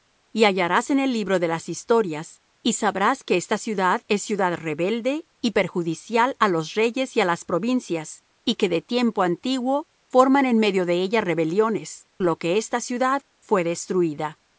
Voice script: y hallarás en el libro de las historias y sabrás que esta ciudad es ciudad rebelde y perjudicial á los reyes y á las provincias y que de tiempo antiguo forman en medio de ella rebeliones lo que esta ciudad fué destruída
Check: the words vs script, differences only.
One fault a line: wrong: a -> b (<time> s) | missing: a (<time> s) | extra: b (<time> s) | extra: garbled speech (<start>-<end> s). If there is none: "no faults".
no faults